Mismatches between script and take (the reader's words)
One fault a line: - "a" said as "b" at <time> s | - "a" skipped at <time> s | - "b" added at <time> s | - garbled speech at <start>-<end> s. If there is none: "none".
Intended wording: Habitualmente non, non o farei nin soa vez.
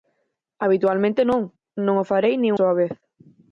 none